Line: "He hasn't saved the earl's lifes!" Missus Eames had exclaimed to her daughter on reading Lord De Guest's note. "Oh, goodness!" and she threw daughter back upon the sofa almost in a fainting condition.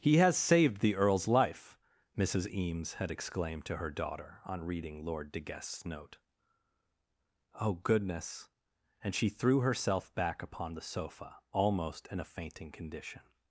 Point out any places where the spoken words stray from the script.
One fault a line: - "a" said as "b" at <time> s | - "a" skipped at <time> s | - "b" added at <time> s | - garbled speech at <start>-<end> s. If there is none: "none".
- "hasn't" said as "has" at 0.2 s
- "lifes" said as "life" at 1.3 s
- "daughter" said as "herself" at 9.6 s